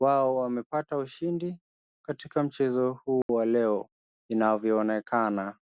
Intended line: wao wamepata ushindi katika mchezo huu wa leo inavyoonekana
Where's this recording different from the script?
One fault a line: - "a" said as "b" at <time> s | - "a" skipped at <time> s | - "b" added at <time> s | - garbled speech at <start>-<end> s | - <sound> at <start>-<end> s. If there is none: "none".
- dropout at 3.2-3.3 s